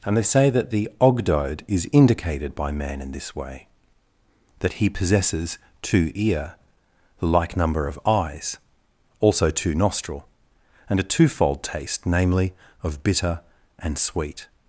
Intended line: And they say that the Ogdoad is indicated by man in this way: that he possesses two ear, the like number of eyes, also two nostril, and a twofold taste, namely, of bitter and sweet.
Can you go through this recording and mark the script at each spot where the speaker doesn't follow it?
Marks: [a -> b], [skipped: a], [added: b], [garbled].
And they say that the Ogdoad is indicated by man in this way: that he possesses two ear, the like number of eyes, also two nostril, and a twofold taste, namely, of bitter and sweet.